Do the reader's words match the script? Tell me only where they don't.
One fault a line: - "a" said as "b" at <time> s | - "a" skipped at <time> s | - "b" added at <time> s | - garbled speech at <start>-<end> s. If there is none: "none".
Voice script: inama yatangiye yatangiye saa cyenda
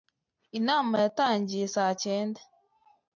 - "yatangiye" skipped at 1.7 s